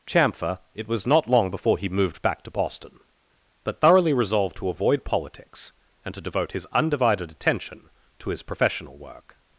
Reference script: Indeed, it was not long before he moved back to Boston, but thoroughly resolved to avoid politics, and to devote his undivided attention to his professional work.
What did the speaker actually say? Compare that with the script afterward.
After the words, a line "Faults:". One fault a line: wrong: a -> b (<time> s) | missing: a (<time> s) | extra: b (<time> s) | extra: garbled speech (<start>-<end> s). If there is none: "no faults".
Chamfer, it was not long before he moved back to Boston, but thoroughly resolved to avoid politics, and to devote his undivided attention to his professional work.
Faults:
wrong: Indeed -> Chamfer (0.1 s)